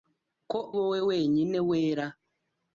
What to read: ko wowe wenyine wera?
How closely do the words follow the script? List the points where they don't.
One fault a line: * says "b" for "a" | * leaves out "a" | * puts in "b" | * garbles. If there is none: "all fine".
all fine